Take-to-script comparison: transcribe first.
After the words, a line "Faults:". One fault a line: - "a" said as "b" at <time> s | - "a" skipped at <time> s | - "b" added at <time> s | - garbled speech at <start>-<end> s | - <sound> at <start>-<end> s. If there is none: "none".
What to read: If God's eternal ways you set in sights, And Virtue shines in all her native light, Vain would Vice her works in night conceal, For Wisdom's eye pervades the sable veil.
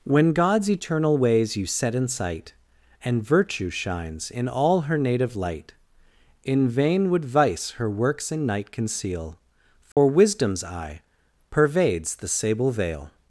When God's eternal ways you set in sight, And Virtue shines in all her native light, In vain would Vice her works in night conceal, For Wisdom's eye pervades the sable veil.
Faults:
- "If" said as "When" at 0.0 s
- "sights" said as "sight" at 2.1 s
- "In" added at 6.4 s
- dropout at 9.9-10.0 s